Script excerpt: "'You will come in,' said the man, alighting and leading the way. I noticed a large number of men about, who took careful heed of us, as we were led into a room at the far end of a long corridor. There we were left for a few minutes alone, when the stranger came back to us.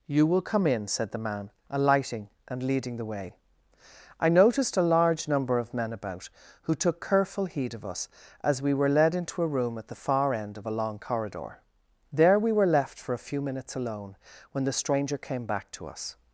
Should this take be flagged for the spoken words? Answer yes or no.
no